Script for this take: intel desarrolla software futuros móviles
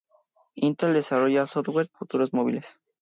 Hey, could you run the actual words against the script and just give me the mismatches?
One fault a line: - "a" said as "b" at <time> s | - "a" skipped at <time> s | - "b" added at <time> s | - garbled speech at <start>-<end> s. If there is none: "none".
none